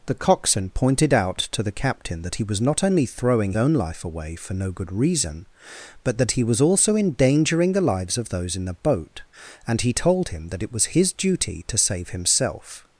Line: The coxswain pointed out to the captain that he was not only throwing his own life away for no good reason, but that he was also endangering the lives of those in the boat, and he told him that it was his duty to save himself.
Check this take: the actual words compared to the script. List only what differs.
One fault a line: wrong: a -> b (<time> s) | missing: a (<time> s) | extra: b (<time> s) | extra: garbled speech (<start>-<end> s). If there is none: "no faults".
missing: his (3.5 s)